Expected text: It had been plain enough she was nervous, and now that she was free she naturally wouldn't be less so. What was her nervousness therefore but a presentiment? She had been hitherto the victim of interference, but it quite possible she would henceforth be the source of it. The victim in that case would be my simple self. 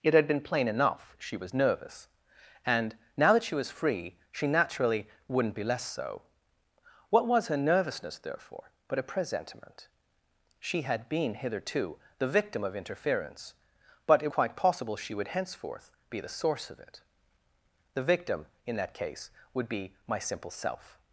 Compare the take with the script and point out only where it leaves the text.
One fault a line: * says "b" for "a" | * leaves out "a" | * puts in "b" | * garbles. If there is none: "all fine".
all fine